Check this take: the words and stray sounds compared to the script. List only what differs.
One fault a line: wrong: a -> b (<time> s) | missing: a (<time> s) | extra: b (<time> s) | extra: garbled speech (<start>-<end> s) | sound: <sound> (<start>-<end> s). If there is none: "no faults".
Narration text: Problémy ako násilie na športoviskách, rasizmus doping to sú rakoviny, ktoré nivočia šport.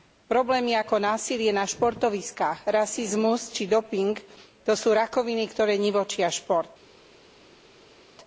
extra: či (3.5 s)